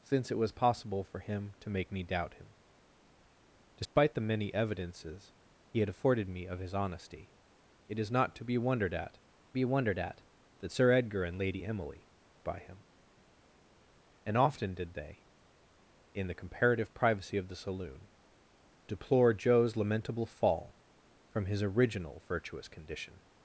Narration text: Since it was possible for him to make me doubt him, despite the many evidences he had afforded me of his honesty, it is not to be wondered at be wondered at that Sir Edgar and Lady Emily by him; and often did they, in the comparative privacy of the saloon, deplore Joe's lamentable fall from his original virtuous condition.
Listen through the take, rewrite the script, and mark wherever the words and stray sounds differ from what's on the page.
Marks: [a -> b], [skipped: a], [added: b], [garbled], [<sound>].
Since it was possible for him to make me doubt him, despite [dropout] the many evidences he had afforded me of his honesty, it is not to be wondered at be wondered at that Sir Edgar and Lady Emily by him; and often did they, in the comparative privacy of the saloon, deplore Joe's lamentable fall from his original virtuous condition.